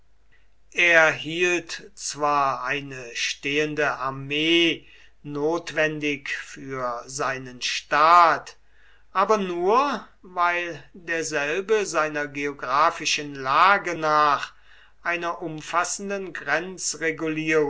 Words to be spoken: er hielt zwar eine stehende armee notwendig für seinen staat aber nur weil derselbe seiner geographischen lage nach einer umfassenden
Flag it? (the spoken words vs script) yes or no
no